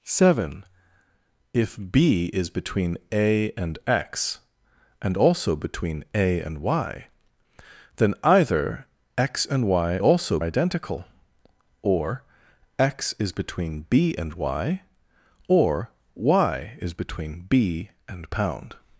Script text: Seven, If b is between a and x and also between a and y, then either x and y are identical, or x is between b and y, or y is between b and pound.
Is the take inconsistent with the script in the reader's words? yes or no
yes